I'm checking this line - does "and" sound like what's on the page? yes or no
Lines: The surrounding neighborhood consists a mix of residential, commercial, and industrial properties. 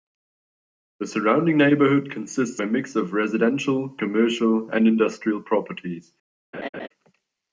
yes